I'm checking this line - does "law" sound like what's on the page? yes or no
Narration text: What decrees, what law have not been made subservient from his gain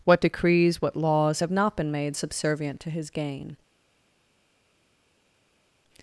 no